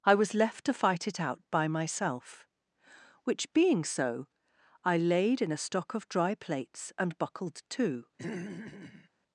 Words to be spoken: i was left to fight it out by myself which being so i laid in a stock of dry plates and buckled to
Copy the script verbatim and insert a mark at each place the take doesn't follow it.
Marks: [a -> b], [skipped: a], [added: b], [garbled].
i was left to fight it out by myself which being so i laid in a stock of dry plates and buckled to